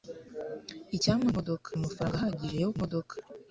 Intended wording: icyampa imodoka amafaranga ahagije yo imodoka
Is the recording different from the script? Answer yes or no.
no